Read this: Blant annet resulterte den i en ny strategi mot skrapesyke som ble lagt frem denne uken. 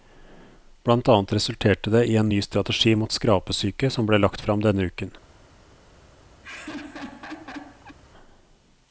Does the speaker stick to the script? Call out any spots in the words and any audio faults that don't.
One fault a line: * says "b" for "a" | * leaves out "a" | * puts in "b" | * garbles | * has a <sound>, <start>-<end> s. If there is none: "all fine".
* says "det" for "den"
* has a laugh, 6.4-8.0 s